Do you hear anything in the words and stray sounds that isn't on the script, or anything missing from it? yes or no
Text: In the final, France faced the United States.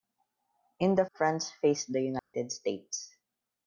yes